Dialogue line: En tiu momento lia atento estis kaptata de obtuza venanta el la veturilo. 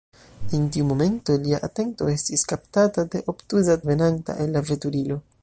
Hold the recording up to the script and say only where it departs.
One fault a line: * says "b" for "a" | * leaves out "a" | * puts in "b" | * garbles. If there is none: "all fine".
all fine